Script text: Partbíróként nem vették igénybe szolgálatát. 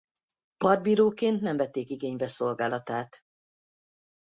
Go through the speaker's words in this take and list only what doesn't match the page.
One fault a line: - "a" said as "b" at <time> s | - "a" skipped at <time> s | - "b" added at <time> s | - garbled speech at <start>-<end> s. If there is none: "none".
none